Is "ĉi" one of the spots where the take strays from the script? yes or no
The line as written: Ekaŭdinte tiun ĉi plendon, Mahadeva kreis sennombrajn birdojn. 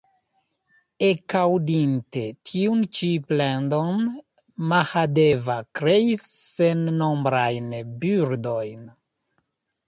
no